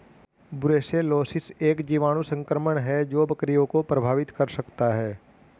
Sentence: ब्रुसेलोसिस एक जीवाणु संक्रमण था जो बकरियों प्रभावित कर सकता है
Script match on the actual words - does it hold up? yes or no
no